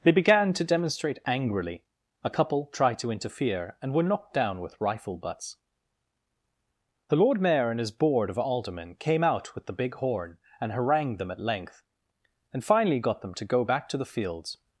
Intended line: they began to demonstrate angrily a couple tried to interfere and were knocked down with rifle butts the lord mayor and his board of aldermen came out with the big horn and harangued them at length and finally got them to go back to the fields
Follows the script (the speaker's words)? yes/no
yes